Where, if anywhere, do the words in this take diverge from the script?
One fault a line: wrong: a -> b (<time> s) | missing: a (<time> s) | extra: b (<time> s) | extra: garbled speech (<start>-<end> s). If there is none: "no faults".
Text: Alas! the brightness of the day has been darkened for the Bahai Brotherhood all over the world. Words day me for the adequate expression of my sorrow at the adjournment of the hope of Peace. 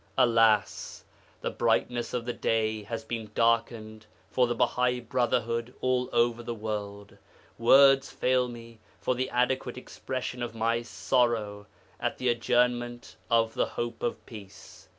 wrong: day -> fail (8.1 s)